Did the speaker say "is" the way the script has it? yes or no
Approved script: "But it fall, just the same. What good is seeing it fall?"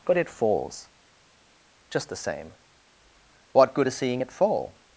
yes